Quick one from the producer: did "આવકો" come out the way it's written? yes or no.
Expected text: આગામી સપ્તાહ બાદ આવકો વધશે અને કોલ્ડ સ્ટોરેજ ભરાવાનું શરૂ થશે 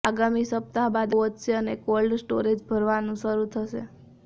no